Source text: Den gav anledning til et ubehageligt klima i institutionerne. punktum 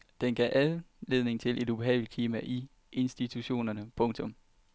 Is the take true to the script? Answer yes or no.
yes